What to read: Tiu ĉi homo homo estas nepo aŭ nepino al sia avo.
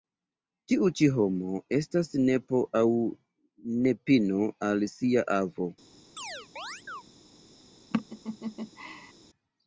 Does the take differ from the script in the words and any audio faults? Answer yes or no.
yes